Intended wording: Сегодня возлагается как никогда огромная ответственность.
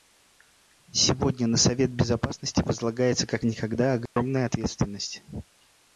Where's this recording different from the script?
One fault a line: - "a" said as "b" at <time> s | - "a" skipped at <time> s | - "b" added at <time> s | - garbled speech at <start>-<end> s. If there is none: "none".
- "на Совет Безопасности" added at 1.4 s